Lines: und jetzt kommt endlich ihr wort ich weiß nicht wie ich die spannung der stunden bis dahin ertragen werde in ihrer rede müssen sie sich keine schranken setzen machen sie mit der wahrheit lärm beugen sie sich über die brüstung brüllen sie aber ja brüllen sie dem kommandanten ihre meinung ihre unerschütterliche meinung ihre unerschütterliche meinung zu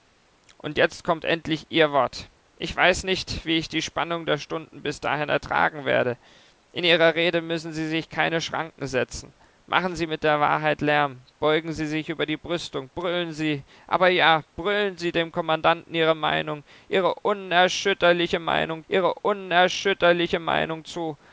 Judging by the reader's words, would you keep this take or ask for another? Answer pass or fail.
pass